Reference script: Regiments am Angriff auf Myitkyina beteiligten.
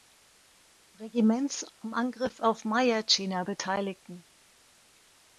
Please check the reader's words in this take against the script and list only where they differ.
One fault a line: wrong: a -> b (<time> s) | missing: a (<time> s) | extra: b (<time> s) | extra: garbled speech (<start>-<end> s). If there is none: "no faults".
no faults